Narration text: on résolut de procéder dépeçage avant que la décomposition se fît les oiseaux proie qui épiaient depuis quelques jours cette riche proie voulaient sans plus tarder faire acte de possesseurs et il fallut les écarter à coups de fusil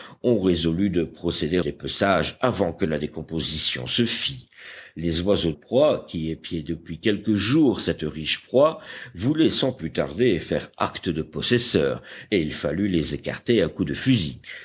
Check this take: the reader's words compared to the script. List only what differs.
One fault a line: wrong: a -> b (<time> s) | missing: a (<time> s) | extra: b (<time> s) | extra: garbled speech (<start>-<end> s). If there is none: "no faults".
no faults